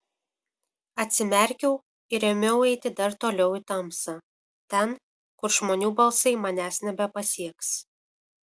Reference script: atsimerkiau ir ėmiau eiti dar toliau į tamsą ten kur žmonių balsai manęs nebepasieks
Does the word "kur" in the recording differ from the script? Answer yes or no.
no